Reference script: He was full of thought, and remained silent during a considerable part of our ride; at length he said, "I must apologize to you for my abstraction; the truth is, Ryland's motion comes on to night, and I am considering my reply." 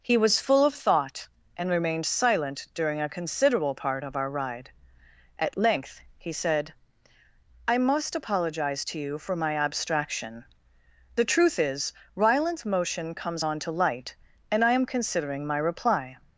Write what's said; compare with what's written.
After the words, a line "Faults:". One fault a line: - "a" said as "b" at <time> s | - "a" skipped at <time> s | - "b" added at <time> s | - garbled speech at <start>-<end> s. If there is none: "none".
He was full of thought, and remained silent during a considerable part of our ride; at length he said, "I must apologize to you for my abstraction; the truth is, Ryland's motion comes on to light, and I am considering my reply."
Faults:
- "night" said as "light" at 13.7 s